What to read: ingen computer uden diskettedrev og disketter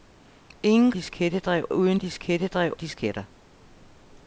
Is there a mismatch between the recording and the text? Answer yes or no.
yes